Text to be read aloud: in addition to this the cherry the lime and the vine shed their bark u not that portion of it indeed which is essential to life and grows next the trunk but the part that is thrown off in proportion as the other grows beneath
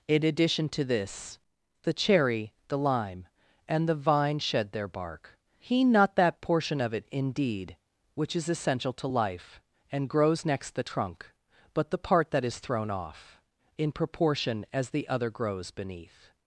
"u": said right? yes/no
no